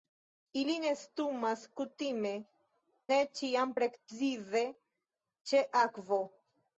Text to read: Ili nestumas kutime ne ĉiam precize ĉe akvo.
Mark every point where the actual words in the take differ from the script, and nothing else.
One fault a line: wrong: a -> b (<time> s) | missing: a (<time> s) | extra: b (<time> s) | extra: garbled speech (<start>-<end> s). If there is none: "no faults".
no faults